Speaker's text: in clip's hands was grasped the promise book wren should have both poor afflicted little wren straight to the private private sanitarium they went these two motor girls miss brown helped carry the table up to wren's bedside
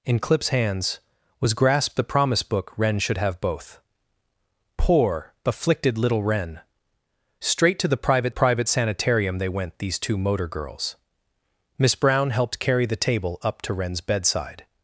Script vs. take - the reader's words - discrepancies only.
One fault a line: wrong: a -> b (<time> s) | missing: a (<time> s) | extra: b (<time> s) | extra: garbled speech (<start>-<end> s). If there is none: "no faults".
no faults